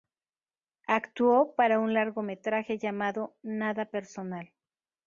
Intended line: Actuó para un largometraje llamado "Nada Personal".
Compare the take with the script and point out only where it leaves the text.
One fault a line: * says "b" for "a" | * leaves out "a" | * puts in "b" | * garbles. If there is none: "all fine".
all fine